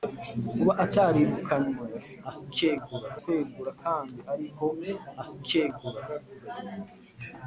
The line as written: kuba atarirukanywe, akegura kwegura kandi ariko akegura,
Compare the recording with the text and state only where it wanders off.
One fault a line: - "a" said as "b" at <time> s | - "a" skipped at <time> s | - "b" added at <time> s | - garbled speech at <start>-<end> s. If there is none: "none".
none